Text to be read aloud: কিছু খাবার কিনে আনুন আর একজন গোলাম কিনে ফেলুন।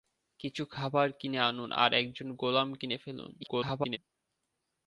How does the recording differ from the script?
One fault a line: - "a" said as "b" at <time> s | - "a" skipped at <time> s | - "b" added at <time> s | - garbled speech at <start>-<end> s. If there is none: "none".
- garbled speech at 3.4-4.0 s